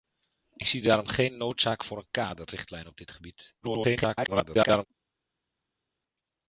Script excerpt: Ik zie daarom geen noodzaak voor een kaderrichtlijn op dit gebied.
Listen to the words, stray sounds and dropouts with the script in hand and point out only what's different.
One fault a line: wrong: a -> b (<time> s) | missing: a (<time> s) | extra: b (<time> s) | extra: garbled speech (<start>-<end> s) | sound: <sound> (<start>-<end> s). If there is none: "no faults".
extra: garbled speech (3.6-4.9 s)